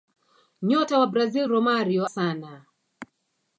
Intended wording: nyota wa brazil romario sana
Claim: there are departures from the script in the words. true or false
false